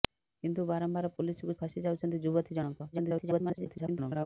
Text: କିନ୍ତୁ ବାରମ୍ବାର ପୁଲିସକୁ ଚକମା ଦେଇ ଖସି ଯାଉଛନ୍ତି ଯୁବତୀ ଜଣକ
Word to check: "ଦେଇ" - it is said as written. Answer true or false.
false